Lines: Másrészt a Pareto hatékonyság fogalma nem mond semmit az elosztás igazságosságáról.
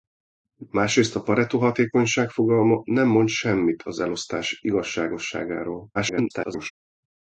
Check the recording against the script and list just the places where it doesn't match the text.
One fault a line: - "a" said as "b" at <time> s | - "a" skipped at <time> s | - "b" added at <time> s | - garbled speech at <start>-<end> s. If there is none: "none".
- garbled speech at 5.9-6.7 s